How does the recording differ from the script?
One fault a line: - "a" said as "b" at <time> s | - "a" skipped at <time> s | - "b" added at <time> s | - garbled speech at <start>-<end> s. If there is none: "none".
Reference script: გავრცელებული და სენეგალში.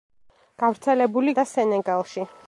none